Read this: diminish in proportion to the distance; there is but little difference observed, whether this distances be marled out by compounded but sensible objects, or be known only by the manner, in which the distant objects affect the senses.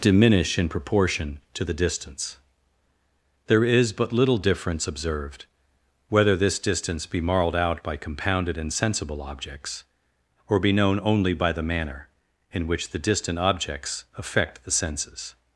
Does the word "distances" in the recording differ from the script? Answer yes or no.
yes